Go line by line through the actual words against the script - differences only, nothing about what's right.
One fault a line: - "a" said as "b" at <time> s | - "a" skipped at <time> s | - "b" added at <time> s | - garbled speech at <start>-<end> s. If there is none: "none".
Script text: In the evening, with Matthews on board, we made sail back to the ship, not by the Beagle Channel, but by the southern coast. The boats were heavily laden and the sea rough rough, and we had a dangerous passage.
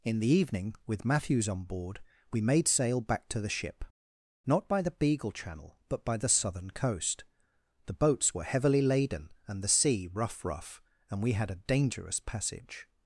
none